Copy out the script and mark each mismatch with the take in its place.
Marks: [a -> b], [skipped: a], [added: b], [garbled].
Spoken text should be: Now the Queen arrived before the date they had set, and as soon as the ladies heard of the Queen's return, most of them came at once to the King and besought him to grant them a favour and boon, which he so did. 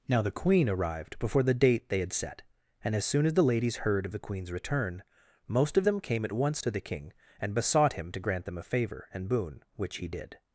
Now the Queen arrived before the date they had set, and as soon as the ladies heard of the Queen's return, most of them came at once to the King and besought him to grant them a favour and boon, which he [skipped: so] did.